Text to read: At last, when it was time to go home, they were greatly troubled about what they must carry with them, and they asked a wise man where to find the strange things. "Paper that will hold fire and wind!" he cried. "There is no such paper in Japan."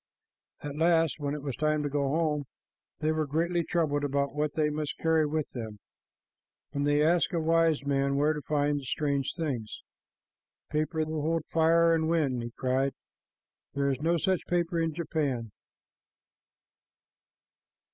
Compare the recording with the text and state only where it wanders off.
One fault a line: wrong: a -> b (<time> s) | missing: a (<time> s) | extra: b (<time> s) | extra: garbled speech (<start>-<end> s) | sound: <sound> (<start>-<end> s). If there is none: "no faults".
missing: that (11.1 s)